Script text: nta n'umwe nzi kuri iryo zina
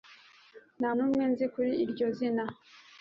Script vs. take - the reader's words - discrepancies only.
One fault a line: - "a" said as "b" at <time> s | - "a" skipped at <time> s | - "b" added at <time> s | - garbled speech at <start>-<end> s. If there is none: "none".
none